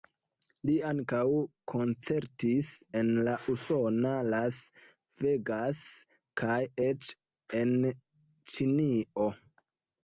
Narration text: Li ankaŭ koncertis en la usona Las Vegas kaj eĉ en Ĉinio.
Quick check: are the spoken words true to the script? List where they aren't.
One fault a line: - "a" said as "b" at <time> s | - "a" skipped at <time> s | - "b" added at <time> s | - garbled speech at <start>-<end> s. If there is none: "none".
none